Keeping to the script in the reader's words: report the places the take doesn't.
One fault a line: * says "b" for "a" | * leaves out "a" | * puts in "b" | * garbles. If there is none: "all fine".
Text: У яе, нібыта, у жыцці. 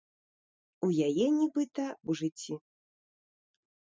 all fine